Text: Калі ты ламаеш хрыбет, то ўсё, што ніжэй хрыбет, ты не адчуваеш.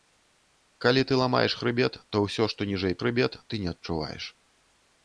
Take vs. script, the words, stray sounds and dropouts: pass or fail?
pass